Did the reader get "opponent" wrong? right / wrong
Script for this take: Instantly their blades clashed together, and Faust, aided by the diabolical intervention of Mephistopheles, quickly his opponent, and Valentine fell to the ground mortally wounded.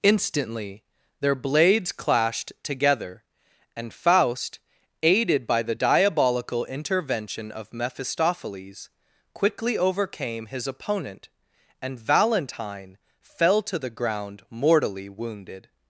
right